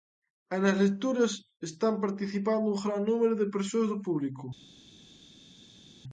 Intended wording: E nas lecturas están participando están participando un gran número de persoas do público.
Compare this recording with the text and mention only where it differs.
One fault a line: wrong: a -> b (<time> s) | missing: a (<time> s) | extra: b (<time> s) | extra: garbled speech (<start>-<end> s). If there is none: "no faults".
missing: están participando (2.7 s)